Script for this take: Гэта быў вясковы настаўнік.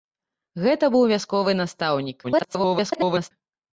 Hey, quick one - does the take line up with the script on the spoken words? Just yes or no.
no